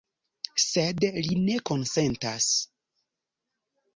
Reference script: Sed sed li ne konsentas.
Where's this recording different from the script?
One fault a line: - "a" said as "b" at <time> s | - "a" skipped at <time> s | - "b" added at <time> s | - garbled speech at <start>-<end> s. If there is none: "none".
- "sed" skipped at 1.1 s